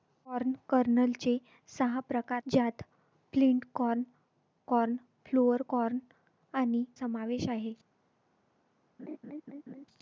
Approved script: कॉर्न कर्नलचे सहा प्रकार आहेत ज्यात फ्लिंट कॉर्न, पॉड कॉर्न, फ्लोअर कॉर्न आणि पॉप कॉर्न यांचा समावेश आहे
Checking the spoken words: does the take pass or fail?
fail